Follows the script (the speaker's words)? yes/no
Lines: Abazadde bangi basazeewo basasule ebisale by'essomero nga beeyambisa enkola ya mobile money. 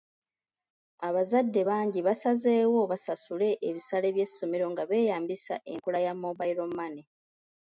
yes